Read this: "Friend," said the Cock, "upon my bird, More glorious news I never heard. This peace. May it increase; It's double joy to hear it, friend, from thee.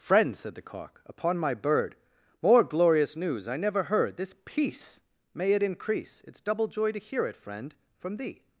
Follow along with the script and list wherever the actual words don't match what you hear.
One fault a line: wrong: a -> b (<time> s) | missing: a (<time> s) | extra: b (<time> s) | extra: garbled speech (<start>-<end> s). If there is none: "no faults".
no faults